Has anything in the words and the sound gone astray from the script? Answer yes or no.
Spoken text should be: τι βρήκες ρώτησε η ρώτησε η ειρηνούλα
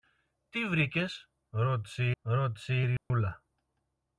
yes